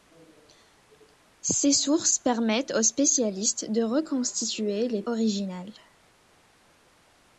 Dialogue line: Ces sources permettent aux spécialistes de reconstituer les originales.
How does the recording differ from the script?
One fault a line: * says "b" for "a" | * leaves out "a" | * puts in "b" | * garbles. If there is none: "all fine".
all fine